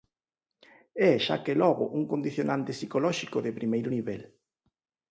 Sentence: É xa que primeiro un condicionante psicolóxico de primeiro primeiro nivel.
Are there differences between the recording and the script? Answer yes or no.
yes